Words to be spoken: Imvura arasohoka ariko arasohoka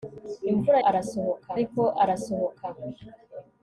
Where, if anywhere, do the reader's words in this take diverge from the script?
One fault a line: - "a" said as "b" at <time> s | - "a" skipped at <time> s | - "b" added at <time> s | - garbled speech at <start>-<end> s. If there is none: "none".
none